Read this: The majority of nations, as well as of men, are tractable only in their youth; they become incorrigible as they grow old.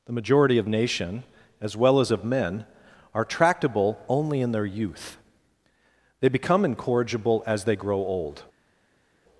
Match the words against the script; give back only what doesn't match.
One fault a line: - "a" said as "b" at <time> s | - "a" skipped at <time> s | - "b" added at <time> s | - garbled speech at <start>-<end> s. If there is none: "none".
- "nations" said as "nation" at 0.7 s